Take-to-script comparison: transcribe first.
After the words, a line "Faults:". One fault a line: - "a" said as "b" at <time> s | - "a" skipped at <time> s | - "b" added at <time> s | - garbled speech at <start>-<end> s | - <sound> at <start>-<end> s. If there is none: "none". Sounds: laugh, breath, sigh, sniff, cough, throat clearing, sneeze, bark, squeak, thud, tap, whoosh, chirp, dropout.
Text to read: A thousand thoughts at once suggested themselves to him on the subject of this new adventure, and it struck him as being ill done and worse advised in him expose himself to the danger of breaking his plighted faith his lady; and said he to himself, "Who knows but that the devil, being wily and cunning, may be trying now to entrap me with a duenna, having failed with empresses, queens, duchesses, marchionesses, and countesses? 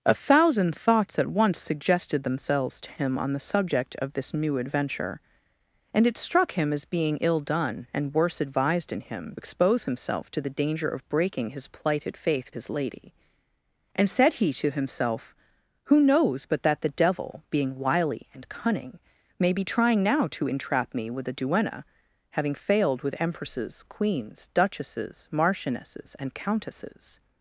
A thousand thoughts at once suggested themselves to him on the subject of this new adventure, and it struck him as being ill done and worse advised in him expose himself to the danger of breaking his plighted faith his lady; and said he to himself, "Who knows but that the devil, being wily and cunning, may be trying now to entrap me with a duenna, having failed with empresses, queens, duchesses, marchionesses, and countesses?
Faults:
none